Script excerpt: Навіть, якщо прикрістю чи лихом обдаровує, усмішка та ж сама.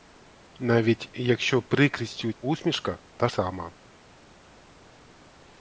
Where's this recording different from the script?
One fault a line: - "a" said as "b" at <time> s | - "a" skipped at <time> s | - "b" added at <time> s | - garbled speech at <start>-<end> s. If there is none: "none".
- "чи лихом обдаровує" skipped at 2.3 s
- "ж" skipped at 3.3 s